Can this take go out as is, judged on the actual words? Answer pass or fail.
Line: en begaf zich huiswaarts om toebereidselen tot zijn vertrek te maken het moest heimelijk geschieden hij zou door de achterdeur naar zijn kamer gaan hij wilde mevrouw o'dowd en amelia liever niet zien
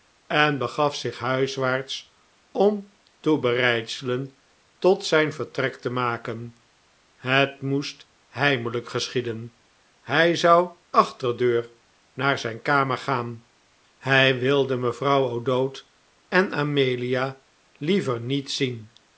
fail